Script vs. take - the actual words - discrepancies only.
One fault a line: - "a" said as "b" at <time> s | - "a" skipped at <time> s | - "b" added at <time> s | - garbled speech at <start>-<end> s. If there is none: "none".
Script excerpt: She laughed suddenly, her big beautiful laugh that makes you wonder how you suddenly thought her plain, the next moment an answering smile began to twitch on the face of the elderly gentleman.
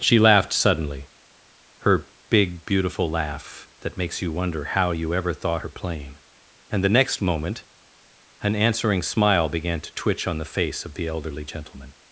- "suddenly" said as "ever" at 5.1 s
- "and" added at 6.7 s